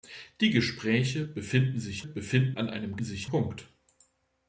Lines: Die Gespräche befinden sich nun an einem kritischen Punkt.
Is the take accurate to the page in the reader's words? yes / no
no